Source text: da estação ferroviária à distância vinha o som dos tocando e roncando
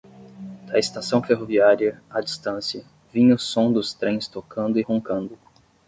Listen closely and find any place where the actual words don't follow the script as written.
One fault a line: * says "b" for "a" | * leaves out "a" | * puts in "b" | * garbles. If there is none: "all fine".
* puts in "trens"